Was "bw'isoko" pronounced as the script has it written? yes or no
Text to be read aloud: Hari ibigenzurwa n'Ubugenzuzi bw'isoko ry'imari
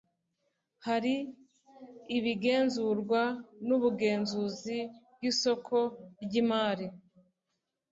yes